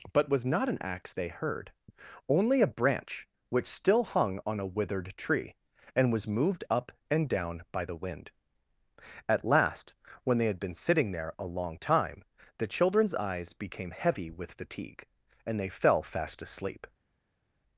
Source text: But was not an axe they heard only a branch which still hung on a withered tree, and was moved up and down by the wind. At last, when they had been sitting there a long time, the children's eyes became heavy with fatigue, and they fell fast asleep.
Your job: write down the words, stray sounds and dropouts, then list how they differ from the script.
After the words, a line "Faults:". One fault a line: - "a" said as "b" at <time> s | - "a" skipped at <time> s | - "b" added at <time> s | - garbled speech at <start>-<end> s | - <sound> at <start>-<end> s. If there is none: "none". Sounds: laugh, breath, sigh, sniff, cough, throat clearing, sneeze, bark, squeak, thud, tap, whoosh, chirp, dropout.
But was not an axe they heard only a branch which still hung on a withered tree, and was moved up and down by the wind. At last, when they had been sitting there a long time, the children's eyes became heavy with fatigue, and they fell fast asleep.
Faults:
none